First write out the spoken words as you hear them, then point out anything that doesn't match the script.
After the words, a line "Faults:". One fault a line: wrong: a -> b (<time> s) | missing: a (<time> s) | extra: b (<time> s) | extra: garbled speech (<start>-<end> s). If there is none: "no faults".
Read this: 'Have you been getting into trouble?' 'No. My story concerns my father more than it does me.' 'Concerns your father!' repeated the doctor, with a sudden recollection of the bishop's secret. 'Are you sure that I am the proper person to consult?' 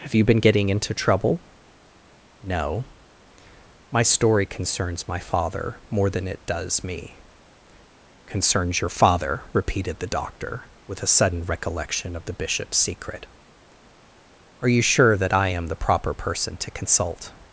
'Have you been getting into trouble?' 'No. My story concerns my father more than it does me.' 'Concerns your father!' repeated the doctor, with a sudden recollection of the bishop's secret. 'Are you sure that I am the proper person to consult?'
Faults:
no faults